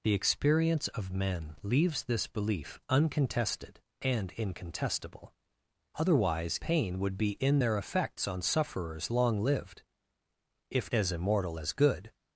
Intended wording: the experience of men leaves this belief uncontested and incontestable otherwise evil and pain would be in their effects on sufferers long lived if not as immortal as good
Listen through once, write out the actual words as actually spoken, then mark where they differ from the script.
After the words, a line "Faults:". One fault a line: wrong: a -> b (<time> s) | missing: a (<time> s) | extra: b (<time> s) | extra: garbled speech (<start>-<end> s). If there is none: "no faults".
the experience of men leaves this belief uncontested and incontestable otherwise pain would be in their effects on sufferers long lived if as immortal as good
Faults:
missing: evil and (6.6 s)
missing: not (10.9 s)